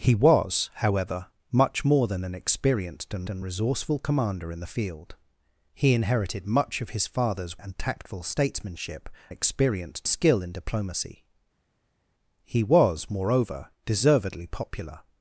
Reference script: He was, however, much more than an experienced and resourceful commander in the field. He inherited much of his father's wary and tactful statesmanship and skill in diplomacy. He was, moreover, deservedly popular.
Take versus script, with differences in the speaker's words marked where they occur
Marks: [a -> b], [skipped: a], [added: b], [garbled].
He was, however, much more than an experienced and [added: and] resourceful commander in the field. He inherited much of his father's [skipped: wary] and tactful statesmanship [and -> experienced] skill in diplomacy. He was, moreover, deservedly popular.